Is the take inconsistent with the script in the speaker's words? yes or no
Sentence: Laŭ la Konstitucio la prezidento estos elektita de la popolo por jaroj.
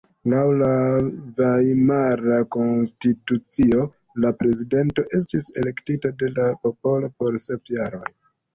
yes